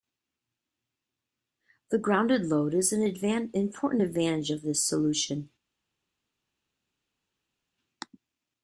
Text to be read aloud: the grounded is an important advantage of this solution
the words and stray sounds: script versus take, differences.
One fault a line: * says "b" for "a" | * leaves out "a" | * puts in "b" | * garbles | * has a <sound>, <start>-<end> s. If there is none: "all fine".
* puts in "load"